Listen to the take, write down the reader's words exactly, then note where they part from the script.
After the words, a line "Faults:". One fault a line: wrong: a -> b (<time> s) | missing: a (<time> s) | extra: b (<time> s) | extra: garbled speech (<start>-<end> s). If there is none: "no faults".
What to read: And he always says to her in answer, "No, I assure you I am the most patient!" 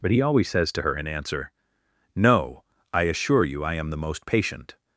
But he always says to her in answer, "No, I assure you I am the most patient!"
Faults:
wrong: And -> But (0.0 s)